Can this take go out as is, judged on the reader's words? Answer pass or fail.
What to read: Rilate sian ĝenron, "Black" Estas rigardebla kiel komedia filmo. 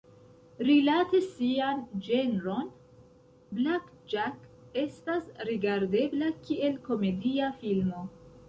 fail